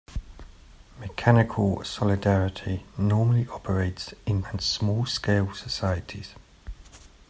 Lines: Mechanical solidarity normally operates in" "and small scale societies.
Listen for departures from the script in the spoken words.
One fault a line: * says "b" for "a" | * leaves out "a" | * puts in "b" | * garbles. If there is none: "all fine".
all fine